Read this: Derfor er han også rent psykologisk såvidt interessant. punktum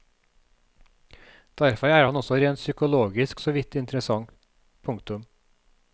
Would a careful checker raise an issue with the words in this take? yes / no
no